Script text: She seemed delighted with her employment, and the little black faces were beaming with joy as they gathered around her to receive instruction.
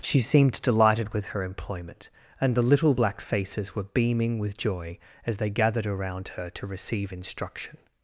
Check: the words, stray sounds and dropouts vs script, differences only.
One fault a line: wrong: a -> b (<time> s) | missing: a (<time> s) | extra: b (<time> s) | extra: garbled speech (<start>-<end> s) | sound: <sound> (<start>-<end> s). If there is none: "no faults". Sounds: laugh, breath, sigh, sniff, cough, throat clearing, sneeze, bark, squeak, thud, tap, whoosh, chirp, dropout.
no faults